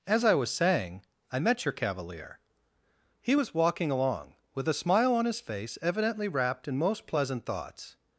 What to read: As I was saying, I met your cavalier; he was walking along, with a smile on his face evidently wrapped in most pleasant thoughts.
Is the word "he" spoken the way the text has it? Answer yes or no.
yes